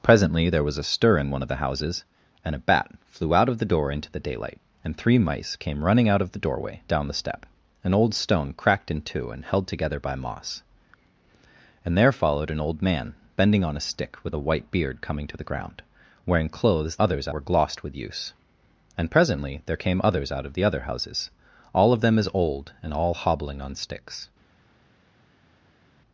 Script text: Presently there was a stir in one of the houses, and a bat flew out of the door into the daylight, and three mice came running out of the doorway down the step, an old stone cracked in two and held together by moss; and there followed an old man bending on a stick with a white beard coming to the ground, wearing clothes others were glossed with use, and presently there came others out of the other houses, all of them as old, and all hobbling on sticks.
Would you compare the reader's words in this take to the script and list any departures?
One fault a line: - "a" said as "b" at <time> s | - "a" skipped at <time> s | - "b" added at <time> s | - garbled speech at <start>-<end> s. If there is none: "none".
none